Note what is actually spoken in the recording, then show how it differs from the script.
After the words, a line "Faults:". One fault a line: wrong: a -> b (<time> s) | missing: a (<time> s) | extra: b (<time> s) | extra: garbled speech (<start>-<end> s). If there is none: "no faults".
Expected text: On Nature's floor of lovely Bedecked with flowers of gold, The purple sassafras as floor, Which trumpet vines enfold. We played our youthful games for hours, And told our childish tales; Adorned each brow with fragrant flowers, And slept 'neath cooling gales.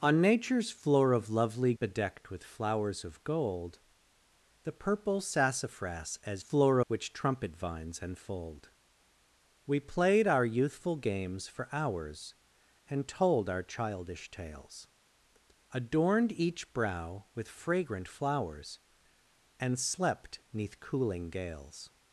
On Nature's floor of lovely Bedecked with flowers of gold, The purple sassafras as floor, Which trumpet vines enfold. We played our youthful games for hours, And told our childish tales; Adorned each brow with fragrant flowers, And slept 'neath cooling gales.
Faults:
no faults